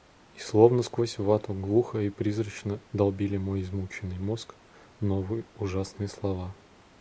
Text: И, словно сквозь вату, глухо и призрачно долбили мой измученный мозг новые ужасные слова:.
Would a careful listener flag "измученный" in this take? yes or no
no